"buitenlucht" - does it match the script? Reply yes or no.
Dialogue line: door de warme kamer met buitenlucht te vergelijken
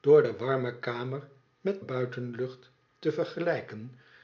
yes